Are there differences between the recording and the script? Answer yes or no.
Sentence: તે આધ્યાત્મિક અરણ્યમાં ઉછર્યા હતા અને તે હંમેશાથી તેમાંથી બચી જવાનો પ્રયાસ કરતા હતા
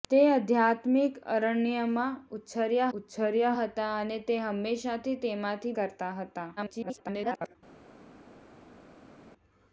yes